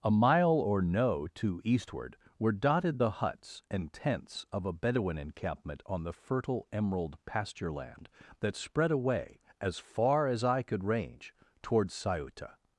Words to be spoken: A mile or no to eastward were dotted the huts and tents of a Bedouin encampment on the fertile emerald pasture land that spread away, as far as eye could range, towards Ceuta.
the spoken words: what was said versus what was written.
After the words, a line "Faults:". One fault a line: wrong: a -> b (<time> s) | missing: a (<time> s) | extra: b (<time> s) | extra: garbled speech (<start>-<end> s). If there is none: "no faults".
A mile or no to eastward were dotted the huts and tents of a Bedouin encampment on the fertile emerald pasture land that spread away, as far as eye could range, towards Ceuta.
Faults:
no faults